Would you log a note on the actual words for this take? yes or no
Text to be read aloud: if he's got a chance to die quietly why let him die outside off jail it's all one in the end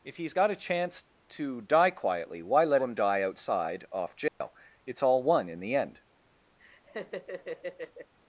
no